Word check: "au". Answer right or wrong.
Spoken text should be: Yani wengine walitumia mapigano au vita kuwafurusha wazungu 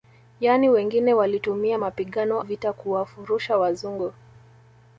wrong